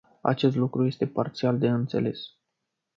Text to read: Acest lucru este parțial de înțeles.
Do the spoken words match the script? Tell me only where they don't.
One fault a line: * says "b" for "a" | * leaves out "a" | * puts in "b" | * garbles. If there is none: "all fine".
all fine